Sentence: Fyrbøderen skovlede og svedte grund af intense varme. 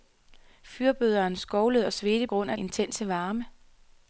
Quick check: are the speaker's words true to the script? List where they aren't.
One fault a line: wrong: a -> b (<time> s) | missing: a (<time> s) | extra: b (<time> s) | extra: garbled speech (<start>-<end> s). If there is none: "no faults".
no faults